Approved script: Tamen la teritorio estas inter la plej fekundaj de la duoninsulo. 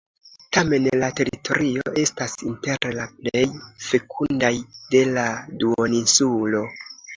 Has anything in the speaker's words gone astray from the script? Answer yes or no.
no